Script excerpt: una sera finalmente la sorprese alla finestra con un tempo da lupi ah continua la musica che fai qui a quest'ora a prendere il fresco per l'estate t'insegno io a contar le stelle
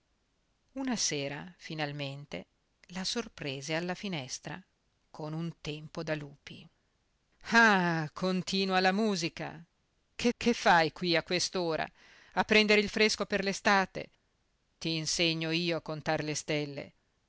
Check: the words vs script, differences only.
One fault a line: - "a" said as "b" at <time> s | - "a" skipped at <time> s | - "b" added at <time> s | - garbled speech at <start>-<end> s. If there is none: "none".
- "che" added at 10.4 s